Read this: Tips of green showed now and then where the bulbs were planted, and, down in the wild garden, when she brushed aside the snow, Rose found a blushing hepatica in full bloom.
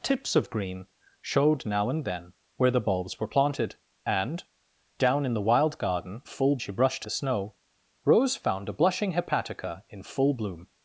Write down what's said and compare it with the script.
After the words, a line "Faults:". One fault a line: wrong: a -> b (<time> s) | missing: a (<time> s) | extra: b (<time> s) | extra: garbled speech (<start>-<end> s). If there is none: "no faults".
Tips of green showed now and then where the bulbs were planted, and, down in the wild garden, full she brushed the snow, Rose found a blushing hepatica in full bloom.
Faults:
wrong: when -> full (6.3 s)
missing: aside (7.0 s)